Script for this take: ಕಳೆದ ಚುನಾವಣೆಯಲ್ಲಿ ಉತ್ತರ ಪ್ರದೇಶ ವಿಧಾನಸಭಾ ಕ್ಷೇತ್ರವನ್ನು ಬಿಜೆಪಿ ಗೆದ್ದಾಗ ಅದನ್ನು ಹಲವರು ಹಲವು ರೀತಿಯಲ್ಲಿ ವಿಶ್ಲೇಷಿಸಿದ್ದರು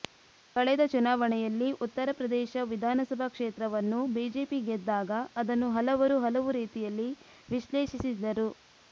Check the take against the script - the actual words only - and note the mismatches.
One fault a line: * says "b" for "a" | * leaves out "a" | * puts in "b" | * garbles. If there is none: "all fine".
all fine